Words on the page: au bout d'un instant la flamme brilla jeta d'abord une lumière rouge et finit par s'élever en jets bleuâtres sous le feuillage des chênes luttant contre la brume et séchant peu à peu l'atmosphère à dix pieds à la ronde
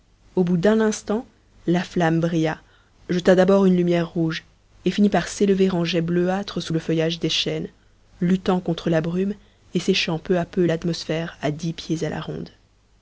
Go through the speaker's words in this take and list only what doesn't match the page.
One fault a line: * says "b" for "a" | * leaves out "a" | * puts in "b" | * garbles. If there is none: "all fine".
all fine